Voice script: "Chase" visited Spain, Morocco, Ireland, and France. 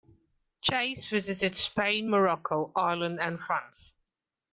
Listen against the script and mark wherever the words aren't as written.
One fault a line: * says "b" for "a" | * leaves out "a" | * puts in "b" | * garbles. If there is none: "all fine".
all fine